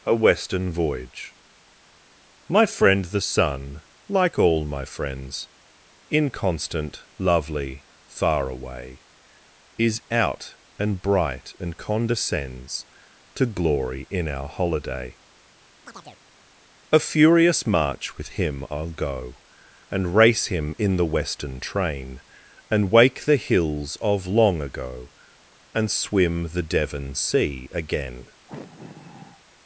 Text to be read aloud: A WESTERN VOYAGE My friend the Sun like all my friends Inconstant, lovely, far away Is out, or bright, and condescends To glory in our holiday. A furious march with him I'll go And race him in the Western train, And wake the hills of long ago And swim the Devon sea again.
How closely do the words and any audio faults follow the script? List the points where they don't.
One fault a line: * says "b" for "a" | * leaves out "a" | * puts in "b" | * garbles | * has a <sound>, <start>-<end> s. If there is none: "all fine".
* says "and" for "or"
* has a chirp, 15.8-16.2 s
* has a sigh, 28.5-29.4 s